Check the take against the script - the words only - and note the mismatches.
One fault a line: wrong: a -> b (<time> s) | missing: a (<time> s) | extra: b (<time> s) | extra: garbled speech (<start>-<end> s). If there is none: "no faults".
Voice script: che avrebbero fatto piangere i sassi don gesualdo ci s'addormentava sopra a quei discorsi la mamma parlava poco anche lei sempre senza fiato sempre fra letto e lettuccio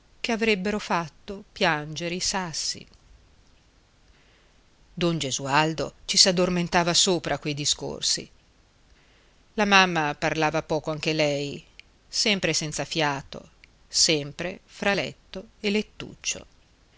no faults